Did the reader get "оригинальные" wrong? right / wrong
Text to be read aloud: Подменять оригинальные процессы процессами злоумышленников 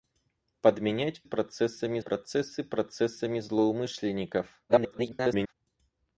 wrong